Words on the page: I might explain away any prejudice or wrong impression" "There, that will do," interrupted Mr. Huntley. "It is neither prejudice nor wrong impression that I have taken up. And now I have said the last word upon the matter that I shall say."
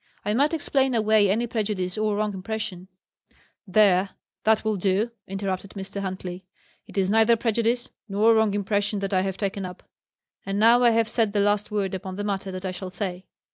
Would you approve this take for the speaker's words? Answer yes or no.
yes